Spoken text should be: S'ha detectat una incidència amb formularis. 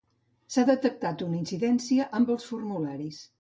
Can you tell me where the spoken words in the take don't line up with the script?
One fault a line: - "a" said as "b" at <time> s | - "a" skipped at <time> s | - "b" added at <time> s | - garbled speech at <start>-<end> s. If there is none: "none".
- "els" added at 2.4 s